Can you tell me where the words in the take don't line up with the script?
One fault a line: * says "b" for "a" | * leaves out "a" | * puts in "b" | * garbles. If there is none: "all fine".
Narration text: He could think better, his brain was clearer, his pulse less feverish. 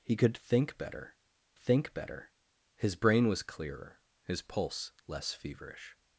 * puts in "think better"